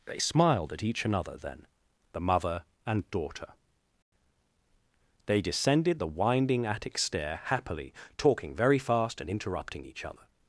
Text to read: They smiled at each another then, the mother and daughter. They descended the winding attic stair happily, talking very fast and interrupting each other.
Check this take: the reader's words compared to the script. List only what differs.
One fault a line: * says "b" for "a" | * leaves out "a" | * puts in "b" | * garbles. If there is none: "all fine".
all fine